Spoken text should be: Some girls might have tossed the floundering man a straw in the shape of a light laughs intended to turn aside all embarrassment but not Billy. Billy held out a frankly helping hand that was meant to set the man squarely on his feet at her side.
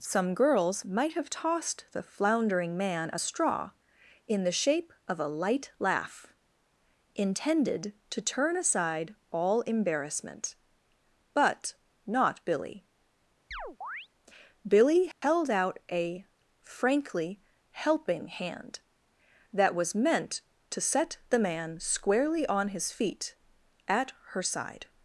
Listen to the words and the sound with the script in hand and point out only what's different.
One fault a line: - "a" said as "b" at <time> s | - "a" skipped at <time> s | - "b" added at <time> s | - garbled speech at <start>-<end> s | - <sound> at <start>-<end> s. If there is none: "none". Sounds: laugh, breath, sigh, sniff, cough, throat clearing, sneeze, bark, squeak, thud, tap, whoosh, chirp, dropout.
- "laughs" said as "laugh" at 5.8 s
- chirp at 13.5-14.1 s
- dropout at 15.1-15.2 s